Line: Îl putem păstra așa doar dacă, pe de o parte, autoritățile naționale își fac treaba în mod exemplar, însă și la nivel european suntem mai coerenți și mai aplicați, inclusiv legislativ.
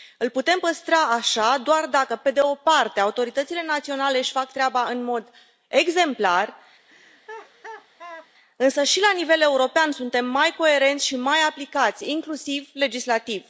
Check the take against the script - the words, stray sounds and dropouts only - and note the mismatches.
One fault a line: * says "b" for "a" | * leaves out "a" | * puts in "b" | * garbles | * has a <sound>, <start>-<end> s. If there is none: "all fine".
* has a laugh, 6.9-8.3 s